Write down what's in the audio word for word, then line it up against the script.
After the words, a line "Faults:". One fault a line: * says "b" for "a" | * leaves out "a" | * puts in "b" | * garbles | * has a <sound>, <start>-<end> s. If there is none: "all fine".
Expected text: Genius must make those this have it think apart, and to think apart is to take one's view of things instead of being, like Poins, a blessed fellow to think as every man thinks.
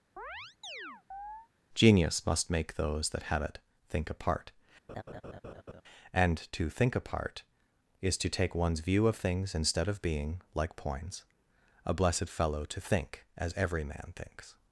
Genius must make those that have it think apart, and to think apart is to take one's view of things instead of being, like Poins, a blessed fellow to think as every man thinks.
Faults:
* has a chirp, 0.2-1.5 s
* says "that" for "this"
* has a laugh, 4.9-5.8 s